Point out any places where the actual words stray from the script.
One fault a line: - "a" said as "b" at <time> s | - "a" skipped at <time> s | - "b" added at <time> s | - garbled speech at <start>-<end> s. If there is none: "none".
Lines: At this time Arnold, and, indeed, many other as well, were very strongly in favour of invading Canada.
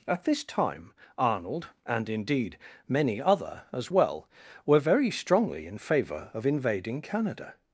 none